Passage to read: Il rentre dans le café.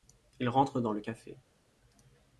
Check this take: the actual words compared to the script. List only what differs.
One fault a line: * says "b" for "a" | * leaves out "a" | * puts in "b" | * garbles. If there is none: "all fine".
all fine